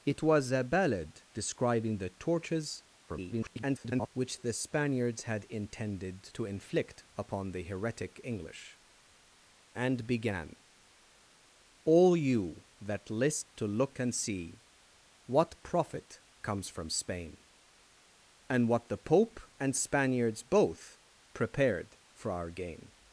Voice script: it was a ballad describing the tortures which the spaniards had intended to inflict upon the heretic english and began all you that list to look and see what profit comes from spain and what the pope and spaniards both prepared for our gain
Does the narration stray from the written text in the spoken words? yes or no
yes